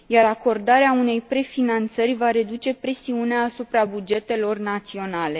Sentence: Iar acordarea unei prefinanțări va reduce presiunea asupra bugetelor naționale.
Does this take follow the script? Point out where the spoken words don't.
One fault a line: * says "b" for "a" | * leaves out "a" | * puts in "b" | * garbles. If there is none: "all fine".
all fine